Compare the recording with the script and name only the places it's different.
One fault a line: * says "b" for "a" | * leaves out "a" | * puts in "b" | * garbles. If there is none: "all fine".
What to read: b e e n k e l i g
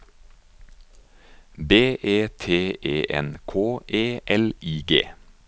* puts in "t"